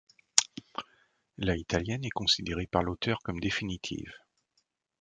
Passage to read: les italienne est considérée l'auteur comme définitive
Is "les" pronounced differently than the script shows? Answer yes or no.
yes